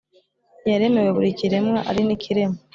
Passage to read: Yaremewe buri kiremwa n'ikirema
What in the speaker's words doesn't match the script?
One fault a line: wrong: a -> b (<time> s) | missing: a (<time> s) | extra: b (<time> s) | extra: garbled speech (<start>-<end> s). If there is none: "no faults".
extra: ari (1.9 s)